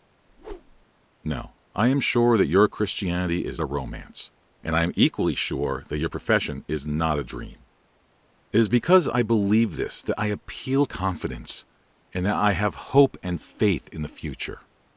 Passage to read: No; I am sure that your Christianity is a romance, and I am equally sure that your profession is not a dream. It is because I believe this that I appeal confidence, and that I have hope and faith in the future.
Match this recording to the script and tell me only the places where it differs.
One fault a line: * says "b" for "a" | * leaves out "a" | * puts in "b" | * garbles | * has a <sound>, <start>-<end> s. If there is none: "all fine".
* has a whoosh, 0.3-0.9 s